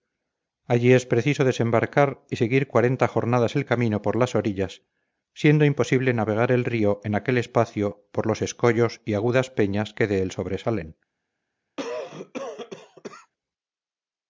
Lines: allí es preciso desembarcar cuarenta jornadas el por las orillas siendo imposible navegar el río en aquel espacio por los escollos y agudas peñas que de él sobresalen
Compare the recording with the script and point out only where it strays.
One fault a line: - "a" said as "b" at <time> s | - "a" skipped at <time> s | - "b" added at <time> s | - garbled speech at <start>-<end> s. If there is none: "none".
- "y seguir" added at 2.3 s
- "camino" added at 3.7 s